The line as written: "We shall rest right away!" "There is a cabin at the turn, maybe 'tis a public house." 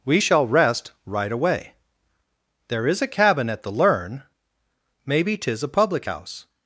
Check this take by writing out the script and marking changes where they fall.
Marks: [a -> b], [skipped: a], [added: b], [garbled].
"We shall rest right away!" "There is a cabin at the [turn, -> learn] maybe 'tis a public house."